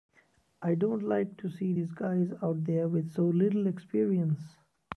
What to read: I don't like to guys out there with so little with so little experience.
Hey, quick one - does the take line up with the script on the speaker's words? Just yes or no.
no